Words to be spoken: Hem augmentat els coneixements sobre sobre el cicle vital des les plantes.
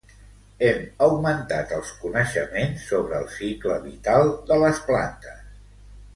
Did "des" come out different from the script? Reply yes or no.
yes